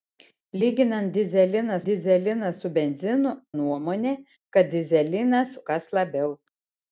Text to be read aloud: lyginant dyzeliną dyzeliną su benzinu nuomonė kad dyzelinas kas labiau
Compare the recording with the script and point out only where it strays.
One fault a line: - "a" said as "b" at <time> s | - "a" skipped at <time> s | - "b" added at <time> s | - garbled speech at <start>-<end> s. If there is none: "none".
none